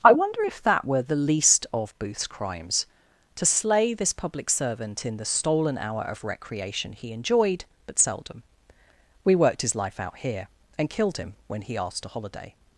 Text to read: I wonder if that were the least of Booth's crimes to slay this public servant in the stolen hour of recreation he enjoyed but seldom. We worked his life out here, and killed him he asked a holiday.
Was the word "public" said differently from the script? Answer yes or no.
no